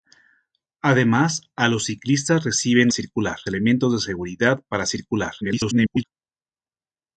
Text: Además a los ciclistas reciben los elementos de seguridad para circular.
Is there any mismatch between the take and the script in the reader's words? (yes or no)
yes